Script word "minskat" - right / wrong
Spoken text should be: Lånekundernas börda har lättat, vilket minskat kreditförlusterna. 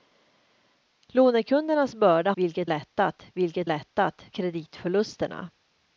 wrong